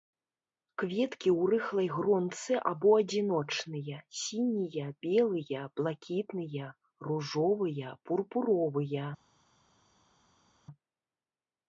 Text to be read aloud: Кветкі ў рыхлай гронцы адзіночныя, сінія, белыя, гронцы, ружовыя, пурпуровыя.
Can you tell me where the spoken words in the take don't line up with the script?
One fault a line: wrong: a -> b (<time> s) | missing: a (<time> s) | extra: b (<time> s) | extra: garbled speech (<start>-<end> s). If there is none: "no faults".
extra: або (2.7 s)
wrong: гронцы -> блакітныя (5.8 s)